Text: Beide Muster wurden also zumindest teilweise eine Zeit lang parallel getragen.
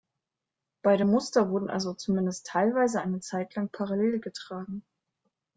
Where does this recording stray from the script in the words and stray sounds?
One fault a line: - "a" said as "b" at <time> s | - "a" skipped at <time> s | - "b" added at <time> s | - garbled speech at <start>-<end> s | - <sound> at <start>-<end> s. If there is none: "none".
none